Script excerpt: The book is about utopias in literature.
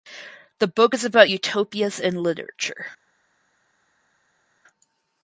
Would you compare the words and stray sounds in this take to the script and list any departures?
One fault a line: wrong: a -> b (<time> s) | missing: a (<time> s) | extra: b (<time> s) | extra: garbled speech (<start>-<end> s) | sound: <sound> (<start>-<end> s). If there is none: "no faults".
no faults